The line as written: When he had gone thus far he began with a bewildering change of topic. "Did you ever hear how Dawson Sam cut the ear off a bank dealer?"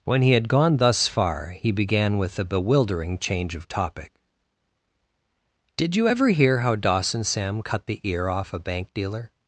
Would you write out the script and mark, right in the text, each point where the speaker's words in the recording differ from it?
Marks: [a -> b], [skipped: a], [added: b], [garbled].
When he had gone thus far he began with a bewildering change of topic. "Did you ever hear how Dawson Sam cut the ear off a bank dealer?"